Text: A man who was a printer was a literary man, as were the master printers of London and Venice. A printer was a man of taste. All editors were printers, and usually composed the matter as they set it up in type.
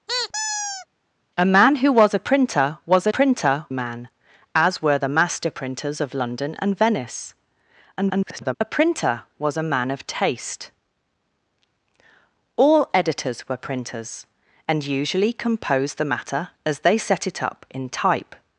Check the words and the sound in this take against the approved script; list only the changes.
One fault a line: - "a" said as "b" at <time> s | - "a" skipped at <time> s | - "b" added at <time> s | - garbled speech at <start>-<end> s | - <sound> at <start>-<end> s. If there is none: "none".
- squeak at 0.1-0.9 s
- "literary" said as "printer" at 3.1 s
- garbled speech at 8.0-8.5 s